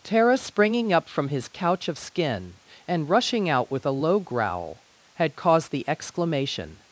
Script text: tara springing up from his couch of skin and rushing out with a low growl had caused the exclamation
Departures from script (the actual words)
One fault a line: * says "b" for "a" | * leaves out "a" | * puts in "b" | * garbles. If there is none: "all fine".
all fine